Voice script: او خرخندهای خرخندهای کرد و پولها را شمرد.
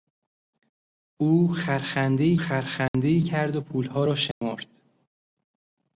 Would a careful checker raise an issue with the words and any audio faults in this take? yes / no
yes